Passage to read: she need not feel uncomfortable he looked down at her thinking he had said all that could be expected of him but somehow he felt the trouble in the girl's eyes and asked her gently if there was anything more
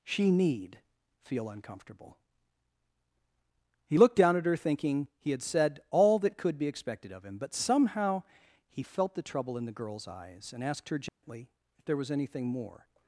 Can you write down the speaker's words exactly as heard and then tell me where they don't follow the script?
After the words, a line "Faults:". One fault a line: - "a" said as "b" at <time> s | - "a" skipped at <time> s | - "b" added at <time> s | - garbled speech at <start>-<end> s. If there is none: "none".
she need feel uncomfortable he looked down at her thinking he had said all that could be expected of him but somehow he felt the trouble in the girl's eyes and asked her gently if there was anything more
Faults:
- "not" skipped at 0.8 s